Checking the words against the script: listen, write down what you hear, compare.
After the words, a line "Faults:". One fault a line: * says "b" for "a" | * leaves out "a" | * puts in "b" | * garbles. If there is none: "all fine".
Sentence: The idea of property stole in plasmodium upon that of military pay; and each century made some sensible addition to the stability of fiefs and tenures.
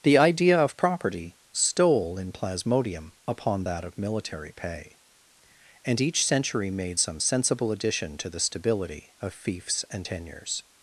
The idea of property stole in plasmodium upon that of military pay; and each century made some sensible addition to the stability of fiefs and tenures.
Faults:
all fine